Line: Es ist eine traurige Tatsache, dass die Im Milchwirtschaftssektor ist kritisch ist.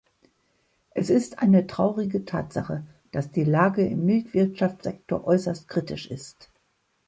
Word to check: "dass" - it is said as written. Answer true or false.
true